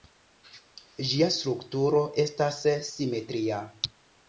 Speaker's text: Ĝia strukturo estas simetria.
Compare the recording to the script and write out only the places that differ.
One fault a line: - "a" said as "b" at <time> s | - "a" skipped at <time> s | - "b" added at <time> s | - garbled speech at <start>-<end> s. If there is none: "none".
none